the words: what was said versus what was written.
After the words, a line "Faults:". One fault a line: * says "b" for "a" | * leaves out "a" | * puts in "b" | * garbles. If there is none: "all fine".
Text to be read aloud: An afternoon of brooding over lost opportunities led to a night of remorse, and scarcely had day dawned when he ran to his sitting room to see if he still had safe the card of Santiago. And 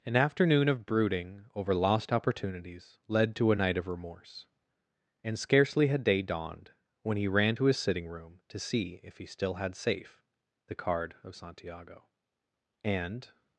An afternoon of brooding over lost opportunities led to a night of remorse, and scarcely had day dawned when he ran to his sitting room to see if he still had safe the card of Santiago. And
Faults:
all fine